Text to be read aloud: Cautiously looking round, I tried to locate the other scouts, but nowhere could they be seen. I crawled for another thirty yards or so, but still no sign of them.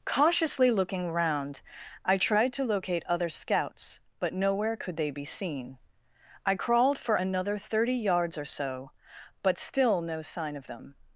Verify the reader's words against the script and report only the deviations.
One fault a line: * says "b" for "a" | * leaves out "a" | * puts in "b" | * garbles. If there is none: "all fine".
* leaves out "the"